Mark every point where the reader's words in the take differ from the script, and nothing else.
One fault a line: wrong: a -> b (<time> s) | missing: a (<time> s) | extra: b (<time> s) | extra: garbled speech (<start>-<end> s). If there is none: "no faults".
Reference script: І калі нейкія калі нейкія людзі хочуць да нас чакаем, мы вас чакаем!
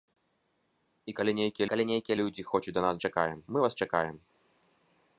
no faults